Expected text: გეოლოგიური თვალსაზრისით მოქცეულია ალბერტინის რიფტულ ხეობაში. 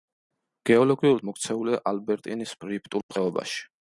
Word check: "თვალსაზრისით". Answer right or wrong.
wrong